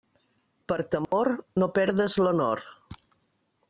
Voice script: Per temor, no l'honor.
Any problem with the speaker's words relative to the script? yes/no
yes